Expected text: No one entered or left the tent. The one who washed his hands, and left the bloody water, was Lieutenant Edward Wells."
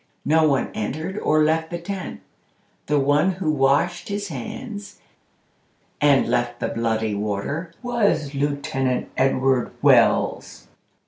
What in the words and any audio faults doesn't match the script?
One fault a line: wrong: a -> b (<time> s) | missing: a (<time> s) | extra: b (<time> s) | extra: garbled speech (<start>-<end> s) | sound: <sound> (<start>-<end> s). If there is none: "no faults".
no faults